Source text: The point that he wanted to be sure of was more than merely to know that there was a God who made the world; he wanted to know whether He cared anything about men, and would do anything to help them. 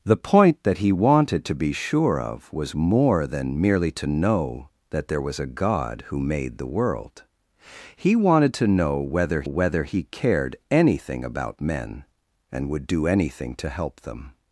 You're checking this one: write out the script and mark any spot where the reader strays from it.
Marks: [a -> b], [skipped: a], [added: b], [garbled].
The point that he wanted to be sure of was more than merely to know that there was a God who made the world; he wanted to know whether [added: whether] He cared anything about men, and would do anything to help them.